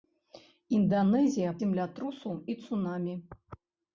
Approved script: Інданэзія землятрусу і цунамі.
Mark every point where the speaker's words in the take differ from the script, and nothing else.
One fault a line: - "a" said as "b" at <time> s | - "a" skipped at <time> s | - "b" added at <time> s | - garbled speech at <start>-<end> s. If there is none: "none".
none